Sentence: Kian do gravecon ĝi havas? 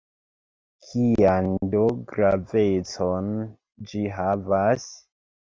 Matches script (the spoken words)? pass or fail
pass